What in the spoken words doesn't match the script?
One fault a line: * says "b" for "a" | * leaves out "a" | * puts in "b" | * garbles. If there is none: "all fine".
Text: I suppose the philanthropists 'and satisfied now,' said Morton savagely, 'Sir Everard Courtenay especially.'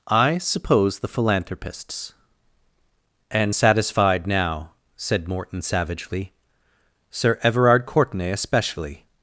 all fine